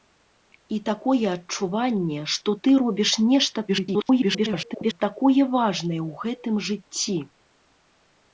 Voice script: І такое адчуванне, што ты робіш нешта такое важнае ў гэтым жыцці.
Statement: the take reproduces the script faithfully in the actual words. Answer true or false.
false